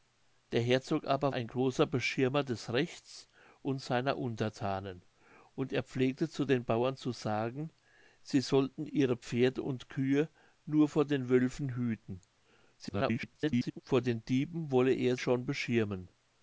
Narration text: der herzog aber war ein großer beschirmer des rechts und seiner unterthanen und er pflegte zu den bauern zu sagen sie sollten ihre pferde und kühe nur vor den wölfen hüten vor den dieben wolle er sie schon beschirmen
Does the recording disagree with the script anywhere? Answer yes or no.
yes